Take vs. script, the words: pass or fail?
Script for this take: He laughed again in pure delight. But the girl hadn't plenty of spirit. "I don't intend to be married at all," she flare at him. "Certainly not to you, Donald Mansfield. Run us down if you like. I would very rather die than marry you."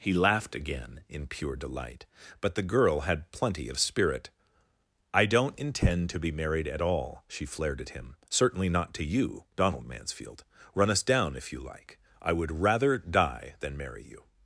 fail